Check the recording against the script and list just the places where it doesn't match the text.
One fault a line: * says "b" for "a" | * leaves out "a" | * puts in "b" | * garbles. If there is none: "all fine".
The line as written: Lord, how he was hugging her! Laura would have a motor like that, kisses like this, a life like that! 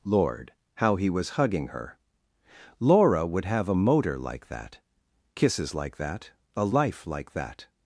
* says "that" for "this"